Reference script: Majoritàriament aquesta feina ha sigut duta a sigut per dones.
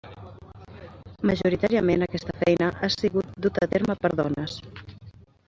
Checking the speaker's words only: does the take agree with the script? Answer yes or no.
no